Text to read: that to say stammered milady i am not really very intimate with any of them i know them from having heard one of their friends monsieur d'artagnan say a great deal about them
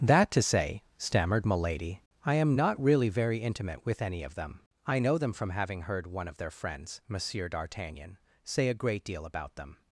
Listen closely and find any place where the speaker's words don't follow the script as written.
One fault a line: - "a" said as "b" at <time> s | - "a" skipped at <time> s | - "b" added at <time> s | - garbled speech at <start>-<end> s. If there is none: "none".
none